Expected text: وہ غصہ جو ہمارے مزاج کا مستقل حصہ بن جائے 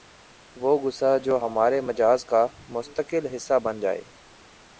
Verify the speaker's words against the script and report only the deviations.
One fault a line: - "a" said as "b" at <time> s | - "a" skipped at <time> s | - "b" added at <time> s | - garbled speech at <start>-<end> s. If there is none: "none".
none